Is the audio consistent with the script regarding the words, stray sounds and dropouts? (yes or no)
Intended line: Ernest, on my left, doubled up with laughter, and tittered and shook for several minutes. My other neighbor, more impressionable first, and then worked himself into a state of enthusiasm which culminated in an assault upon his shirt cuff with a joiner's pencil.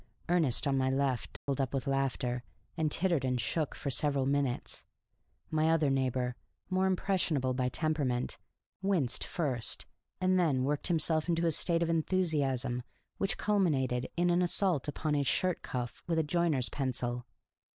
no